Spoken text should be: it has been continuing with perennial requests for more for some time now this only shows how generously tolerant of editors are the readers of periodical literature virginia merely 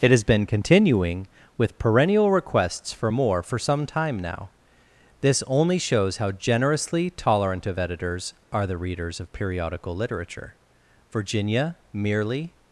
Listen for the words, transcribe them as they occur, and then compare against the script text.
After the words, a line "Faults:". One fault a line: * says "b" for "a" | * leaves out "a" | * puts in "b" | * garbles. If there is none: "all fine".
it has been continuing with perennial requests for more for some time now this only shows how generously tolerant of editors are the readers of periodical literature virginia merely
Faults:
all fine